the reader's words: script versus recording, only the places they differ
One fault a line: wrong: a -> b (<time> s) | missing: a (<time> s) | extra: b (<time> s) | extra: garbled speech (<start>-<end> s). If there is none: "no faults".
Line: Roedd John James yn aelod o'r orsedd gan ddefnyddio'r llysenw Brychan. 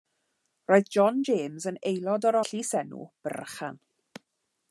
missing: orsedd gan ddefnyddio'r (2.4 s)